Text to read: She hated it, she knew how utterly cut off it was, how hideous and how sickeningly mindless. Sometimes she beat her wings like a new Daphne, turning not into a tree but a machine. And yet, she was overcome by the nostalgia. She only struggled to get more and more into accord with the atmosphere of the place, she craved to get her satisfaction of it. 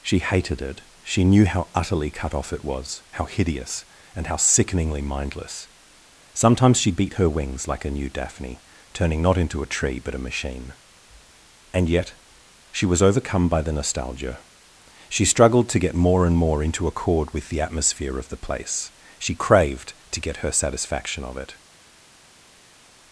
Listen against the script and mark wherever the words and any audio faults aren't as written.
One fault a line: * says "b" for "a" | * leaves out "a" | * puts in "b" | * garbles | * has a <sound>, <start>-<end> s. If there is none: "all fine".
* leaves out "only"